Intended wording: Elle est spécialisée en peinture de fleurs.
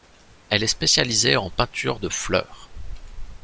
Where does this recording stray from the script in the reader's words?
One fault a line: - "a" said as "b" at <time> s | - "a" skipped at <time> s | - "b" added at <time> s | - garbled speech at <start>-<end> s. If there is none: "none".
none